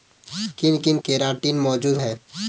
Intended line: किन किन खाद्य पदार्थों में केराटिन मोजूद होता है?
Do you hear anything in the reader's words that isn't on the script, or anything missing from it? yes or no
yes